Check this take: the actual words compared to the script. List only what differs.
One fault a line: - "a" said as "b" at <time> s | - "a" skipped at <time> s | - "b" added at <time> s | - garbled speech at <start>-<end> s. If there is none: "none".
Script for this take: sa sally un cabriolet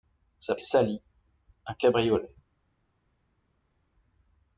none